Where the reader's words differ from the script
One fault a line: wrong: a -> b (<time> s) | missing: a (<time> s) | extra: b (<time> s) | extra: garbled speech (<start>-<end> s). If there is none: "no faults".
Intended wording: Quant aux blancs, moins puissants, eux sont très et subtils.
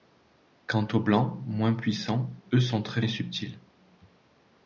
no faults